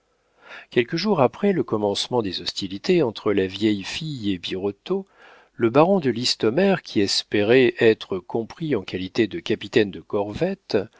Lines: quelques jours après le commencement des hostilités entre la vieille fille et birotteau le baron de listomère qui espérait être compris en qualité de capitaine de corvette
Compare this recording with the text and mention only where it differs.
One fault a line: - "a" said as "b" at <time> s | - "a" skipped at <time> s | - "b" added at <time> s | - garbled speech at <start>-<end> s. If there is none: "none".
none